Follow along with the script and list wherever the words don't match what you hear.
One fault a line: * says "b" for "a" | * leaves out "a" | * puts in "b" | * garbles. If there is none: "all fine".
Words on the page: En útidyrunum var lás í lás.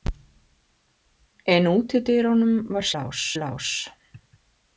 all fine